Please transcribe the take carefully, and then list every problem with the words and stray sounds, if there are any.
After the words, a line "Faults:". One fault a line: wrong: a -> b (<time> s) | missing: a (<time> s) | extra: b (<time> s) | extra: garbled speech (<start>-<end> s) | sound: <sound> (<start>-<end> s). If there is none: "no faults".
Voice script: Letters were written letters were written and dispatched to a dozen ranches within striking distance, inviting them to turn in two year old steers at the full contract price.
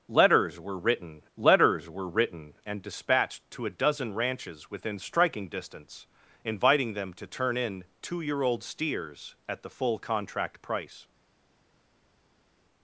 Letters were written letters were written and dispatched to a dozen ranches within striking distance, inviting them to turn in two year old steers at the full contract price.
Faults:
no faults